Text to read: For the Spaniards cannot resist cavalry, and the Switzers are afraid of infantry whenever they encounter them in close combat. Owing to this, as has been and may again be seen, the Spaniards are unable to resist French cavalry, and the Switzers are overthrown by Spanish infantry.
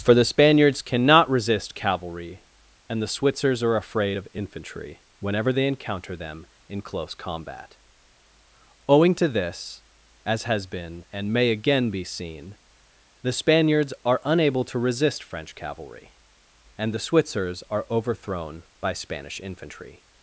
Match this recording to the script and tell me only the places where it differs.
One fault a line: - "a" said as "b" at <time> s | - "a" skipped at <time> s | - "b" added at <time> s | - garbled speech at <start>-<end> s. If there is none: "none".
none